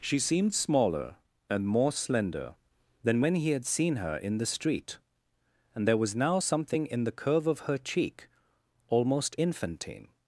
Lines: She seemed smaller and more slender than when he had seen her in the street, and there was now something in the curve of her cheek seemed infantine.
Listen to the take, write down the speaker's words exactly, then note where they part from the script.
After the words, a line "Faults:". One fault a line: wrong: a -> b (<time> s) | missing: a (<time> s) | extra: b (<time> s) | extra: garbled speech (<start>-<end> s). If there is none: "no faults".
She seemed smaller and more slender than when he had seen her in the street, and there was now something in the curve of her cheek almost infantine.
Faults:
wrong: seemed -> almost (8.9 s)